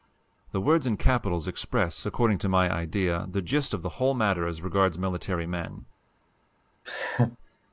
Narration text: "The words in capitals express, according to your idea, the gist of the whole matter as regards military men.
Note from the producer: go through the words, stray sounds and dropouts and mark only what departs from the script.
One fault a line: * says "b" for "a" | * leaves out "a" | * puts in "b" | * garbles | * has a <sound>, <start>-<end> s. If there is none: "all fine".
* says "my" for "your"
* has a laugh, 6.8-7.4 s